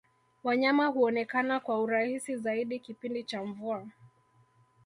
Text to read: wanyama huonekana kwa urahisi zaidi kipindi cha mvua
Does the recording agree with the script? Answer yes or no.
yes